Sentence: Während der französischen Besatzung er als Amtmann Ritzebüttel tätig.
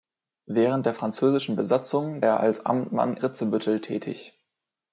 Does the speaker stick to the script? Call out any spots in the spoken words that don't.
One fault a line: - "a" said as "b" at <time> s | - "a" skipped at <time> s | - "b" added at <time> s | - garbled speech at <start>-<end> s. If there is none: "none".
none